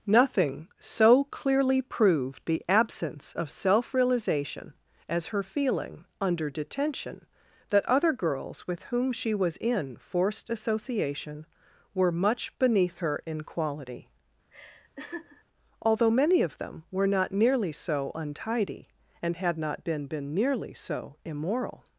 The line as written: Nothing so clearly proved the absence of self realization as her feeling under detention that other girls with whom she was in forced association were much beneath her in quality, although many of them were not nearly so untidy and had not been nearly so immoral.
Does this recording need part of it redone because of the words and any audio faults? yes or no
yes